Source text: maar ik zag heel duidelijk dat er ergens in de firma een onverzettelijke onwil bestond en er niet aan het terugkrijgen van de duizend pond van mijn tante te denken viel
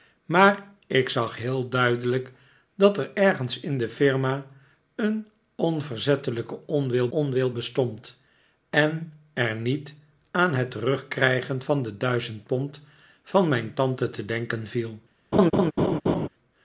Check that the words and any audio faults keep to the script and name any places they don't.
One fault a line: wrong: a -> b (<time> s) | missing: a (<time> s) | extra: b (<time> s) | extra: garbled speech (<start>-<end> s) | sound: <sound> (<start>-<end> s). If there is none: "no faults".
extra: onwil (7.1 s)
sound: laugh (15.3-16.3 s)